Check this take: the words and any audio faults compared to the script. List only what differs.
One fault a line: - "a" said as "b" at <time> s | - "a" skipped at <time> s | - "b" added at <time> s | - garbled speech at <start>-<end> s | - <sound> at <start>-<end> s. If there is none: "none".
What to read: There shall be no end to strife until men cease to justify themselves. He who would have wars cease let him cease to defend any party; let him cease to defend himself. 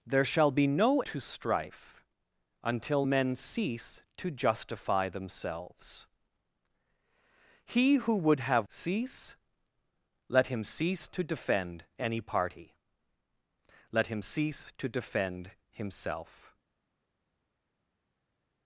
- "end" skipped at 1.0 s
- "wars" skipped at 8.7 s